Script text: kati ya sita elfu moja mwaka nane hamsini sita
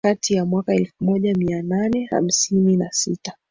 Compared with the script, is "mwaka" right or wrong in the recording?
wrong